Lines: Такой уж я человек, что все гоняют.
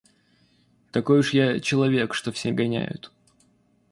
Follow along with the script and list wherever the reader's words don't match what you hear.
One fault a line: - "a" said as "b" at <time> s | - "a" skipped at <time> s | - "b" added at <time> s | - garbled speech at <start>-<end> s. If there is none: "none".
none